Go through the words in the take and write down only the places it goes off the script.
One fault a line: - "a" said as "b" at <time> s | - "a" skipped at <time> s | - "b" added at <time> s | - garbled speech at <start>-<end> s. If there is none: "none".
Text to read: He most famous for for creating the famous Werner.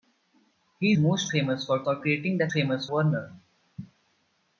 none